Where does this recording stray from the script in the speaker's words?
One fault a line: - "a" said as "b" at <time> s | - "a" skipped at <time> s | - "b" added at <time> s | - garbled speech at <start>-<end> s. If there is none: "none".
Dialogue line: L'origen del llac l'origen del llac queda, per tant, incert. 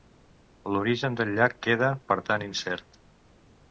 - "l'origen del llac" skipped at 1.6 s